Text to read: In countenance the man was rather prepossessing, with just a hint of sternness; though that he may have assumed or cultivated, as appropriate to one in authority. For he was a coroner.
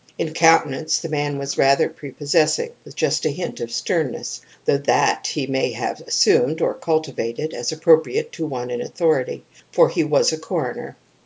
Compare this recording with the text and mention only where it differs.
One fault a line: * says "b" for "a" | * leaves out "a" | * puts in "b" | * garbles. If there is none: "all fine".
all fine